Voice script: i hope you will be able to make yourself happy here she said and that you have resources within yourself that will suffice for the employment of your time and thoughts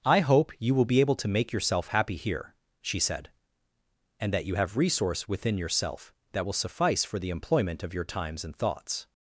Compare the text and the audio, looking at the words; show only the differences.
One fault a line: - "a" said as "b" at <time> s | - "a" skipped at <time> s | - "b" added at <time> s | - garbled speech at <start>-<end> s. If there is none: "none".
- "resources" said as "resource" at 4.8 s
- "time" said as "times" at 8.0 s